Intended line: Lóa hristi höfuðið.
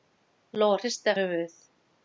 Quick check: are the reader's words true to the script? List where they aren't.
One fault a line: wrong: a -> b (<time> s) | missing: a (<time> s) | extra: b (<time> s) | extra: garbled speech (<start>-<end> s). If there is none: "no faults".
no faults